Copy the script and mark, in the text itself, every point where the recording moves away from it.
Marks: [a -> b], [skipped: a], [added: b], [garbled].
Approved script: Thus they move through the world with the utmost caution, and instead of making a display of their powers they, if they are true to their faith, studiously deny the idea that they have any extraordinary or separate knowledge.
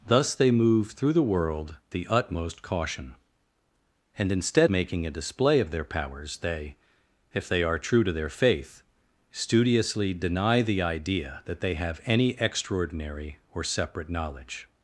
Thus they move through the world [skipped: with] the utmost caution, and instead [skipped: of] making a display of their powers they, if they are true to their faith, studiously deny the idea that they have any extraordinary or separate knowledge.